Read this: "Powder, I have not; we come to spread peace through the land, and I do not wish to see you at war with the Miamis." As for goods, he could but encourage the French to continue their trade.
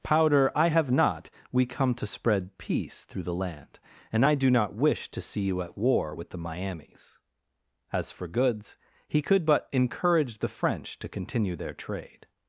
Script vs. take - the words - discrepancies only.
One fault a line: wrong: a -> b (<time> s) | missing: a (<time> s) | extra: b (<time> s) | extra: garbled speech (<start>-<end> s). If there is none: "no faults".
no faults